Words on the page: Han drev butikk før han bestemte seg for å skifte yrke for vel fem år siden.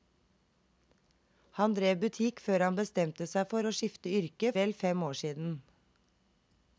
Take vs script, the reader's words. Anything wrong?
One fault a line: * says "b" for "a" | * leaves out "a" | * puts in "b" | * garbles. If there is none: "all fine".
* leaves out "for"